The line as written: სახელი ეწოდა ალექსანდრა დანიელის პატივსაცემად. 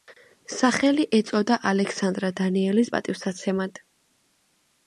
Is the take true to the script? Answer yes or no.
yes